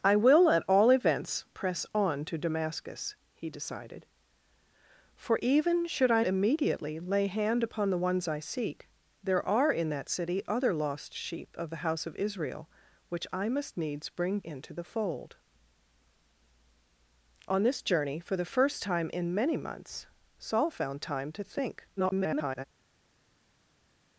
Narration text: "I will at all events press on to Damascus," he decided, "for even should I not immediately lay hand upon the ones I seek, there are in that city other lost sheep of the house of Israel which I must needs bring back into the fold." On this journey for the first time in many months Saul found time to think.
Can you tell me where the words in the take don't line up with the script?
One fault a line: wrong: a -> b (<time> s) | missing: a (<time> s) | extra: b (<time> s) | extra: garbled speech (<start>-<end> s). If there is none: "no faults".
missing: not (6.2 s)
missing: back (14.4 s)
extra: garbled speech (22.0-22.6 s)